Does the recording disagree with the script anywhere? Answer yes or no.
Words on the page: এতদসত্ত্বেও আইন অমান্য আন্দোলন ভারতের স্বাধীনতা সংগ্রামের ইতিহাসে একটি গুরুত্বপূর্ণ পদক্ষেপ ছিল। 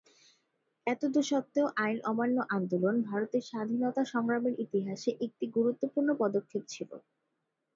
no